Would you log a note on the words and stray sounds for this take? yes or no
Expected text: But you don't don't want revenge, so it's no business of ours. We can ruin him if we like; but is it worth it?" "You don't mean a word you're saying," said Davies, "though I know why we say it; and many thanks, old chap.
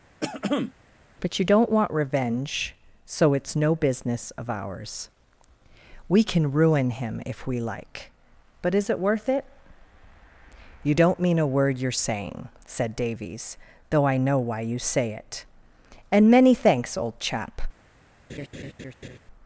yes